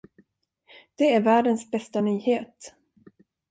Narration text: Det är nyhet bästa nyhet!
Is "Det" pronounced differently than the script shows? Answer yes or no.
no